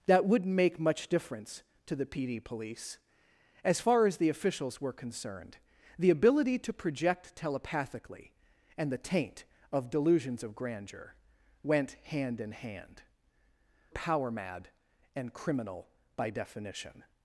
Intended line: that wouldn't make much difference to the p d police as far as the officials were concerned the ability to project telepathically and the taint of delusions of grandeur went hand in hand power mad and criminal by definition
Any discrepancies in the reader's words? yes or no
no